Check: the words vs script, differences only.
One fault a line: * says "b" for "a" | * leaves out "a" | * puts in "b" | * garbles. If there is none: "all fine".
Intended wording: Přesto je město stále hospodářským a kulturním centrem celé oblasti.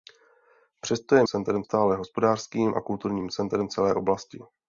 * says "centrem" for "město"